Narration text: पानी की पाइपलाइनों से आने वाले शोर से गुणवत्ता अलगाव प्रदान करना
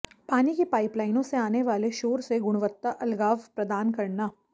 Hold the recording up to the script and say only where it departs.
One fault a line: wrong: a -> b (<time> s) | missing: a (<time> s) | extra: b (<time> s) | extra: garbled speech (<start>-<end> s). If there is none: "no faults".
no faults